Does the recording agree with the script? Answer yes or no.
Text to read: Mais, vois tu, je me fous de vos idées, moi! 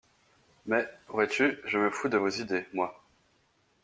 yes